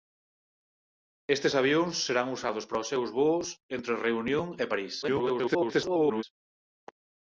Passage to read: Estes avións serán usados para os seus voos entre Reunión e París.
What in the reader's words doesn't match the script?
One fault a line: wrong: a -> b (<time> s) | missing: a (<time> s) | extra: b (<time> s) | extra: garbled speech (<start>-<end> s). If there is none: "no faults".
extra: garbled speech (5.0-6.2 s)